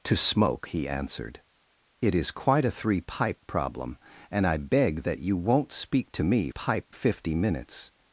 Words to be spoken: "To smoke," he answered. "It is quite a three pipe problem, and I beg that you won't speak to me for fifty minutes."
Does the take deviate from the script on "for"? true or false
true